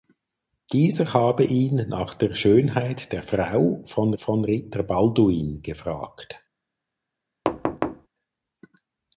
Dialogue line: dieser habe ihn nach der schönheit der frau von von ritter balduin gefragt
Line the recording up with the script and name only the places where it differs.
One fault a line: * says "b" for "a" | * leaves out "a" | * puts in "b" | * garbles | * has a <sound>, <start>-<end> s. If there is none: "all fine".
* has a thud, 7.4-8.1 s